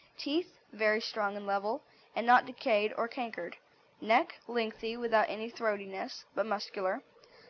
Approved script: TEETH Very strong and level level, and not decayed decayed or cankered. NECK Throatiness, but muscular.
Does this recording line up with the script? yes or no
no